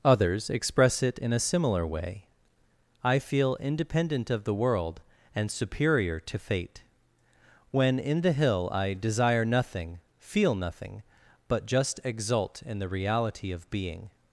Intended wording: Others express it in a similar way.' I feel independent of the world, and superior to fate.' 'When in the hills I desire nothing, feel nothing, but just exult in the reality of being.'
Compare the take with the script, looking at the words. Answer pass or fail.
fail